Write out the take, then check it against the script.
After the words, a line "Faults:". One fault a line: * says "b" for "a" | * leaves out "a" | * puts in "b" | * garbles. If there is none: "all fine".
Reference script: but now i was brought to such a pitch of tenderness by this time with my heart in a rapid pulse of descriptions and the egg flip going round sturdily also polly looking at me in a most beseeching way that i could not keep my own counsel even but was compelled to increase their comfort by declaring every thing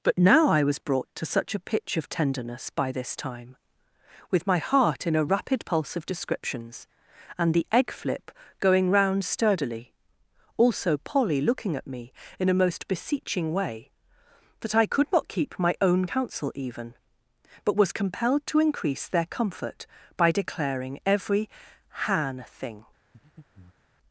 but now i was brought to such a pitch of tenderness by this time with my heart in a rapid pulse of descriptions and the egg flip going round sturdily also polly looking at me in a most beseeching way that i could not keep my own counsel even but was compelled to increase their comfort by declaring every han thing
Faults:
* puts in "han"